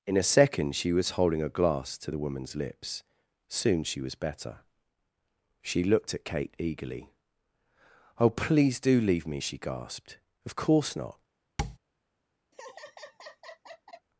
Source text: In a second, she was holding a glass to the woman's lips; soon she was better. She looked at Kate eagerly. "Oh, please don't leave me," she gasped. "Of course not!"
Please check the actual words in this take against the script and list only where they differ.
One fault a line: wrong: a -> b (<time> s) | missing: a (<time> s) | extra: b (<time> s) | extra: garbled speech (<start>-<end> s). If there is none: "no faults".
wrong: don't -> do (8.8 s)